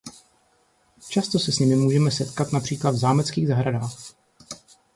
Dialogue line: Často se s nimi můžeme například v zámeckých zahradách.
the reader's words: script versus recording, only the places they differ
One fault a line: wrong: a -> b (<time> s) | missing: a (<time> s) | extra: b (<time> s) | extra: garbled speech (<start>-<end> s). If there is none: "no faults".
extra: setkat (2.1 s)